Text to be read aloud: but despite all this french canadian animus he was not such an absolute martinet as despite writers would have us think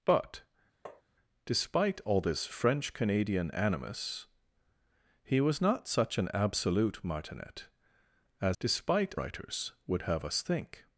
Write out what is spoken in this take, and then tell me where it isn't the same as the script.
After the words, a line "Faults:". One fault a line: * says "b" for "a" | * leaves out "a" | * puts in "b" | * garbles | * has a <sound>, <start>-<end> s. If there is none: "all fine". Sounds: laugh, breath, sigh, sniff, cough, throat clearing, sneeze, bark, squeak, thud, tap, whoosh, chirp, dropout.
but despite all this french canadian animus he was not such an absolute martinet as despite writers would have us think
Faults:
* has a tap, 0.9-1.0 s